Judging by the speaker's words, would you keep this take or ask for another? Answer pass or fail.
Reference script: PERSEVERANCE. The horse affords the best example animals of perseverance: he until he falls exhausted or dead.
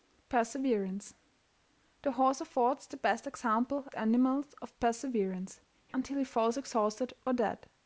pass